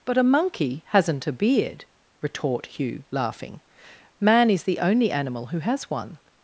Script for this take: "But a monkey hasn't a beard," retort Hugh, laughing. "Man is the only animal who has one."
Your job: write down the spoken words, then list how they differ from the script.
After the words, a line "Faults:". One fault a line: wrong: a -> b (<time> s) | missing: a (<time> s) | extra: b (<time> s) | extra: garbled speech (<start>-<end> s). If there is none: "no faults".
"But a monkey hasn't a beard," retort Hugh, laughing. "Man is the only animal who has one."
Faults:
no faults